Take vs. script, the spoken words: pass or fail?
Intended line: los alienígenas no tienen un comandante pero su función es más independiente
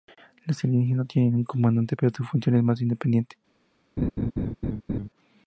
pass